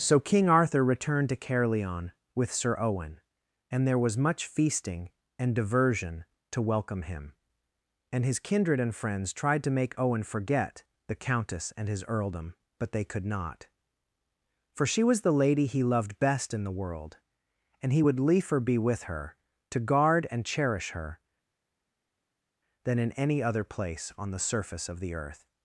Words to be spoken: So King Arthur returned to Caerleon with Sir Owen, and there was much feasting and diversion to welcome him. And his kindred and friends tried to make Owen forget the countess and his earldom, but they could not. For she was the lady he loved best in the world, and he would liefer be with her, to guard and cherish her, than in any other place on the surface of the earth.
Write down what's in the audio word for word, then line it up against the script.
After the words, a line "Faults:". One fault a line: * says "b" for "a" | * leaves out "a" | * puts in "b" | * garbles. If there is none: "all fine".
So King Arthur returned to Caerleon with Sir Owen, and there was much feasting and diversion to welcome him. And his kindred and friends tried to make Owen forget the countess and his earldom, but they could not. For she was the lady he loved best in the world, and he would liefer be with her, to guard and cherish her, than in any other place on the surface of the earth.
Faults:
all fine